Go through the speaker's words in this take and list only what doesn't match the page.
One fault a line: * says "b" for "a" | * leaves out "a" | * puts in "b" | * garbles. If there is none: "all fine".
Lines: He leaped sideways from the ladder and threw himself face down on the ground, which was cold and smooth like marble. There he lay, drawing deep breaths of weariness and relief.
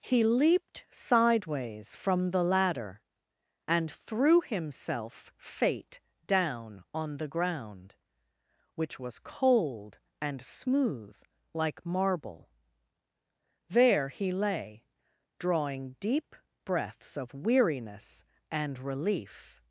* says "fate" for "face"